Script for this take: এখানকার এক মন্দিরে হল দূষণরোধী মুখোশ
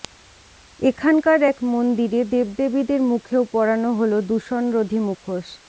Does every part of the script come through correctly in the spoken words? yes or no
no